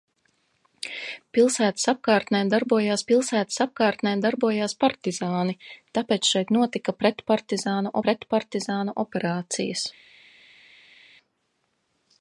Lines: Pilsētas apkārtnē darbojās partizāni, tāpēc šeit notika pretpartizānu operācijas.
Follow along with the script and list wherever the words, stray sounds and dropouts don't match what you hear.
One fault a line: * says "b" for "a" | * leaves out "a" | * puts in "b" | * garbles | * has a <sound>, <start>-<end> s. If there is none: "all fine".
* puts in "pilsētas apkārtnē darbojās"
* puts in "pretpartizānu"